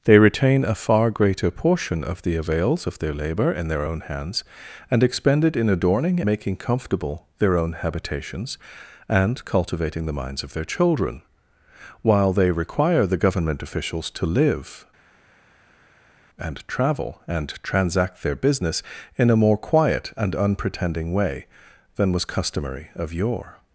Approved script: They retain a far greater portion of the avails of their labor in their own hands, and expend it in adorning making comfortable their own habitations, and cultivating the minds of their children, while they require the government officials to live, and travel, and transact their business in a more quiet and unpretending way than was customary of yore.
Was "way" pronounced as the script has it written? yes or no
yes